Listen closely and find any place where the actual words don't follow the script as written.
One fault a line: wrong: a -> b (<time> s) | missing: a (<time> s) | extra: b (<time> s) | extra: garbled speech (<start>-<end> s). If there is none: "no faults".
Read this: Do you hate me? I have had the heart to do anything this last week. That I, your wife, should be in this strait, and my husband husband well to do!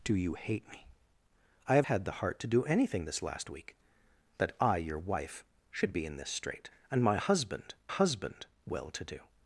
no faults